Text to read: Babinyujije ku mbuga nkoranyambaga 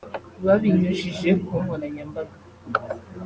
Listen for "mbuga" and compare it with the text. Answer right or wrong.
wrong